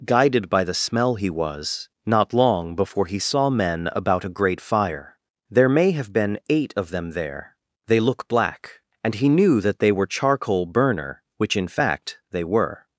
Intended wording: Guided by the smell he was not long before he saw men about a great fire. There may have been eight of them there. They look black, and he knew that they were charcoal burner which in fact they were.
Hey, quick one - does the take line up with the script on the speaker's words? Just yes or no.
yes